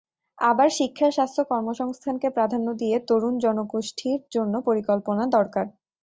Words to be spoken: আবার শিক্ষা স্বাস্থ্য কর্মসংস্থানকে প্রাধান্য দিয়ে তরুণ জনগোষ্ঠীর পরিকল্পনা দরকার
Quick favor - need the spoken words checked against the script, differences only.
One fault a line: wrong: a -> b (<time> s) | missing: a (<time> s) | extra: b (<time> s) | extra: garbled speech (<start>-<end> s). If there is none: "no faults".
extra: জন্য (4.3 s)